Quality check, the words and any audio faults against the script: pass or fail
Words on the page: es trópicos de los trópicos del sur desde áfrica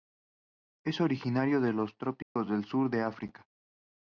fail